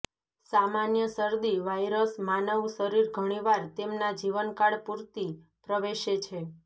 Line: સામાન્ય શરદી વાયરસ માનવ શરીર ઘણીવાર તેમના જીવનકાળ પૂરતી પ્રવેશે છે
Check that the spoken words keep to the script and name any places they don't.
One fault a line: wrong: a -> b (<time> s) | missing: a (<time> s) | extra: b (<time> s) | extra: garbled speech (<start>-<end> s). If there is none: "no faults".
no faults